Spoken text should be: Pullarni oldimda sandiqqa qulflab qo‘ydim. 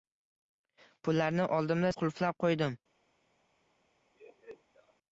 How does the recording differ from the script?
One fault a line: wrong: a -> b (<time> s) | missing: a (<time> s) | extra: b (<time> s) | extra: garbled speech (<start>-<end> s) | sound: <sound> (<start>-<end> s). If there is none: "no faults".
missing: sandiqqa (1.9 s)
sound: laugh (4.1-4.9 s)